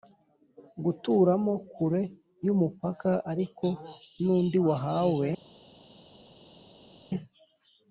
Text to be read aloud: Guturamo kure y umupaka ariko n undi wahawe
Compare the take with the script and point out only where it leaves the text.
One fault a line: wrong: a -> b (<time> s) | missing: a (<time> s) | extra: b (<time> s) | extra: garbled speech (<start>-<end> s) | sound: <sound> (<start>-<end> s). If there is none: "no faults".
no faults